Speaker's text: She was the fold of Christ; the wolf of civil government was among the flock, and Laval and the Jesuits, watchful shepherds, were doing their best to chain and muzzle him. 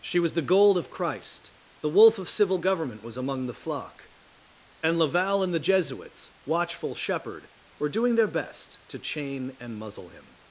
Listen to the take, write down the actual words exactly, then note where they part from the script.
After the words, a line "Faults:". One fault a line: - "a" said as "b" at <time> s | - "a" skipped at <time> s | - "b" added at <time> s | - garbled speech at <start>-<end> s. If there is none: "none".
She was the gold of Christ; the wolf of civil government was among the flock, and Laval and the Jesuits, watchful shepherd, were doing their best to chain and muzzle him.
Faults:
- "fold" said as "gold" at 0.4 s
- "shepherds" said as "shepherd" at 7.0 s